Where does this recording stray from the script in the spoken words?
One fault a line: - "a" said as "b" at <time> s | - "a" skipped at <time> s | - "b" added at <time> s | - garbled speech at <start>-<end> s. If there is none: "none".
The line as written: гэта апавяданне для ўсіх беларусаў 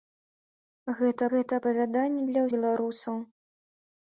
- "гэта" added at 1.3 s
- "ўсіх" skipped at 2.4 s